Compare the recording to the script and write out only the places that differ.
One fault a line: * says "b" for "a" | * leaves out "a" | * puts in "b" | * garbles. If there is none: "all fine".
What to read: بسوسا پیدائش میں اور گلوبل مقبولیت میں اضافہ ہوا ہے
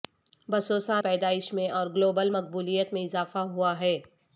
all fine